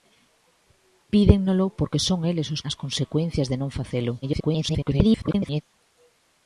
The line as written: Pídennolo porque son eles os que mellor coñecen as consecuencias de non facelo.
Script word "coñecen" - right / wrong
wrong